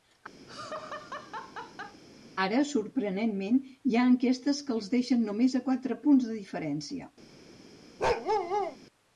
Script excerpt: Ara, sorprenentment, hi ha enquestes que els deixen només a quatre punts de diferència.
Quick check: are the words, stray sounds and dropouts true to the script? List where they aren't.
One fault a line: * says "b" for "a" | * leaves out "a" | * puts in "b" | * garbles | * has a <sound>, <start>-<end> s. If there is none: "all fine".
* has a laugh, 0.5-2.0 s
* has a bark, 8.0-8.8 s